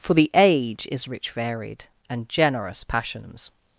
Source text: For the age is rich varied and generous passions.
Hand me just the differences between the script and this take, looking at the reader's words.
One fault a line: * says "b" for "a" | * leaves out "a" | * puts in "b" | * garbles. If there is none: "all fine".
all fine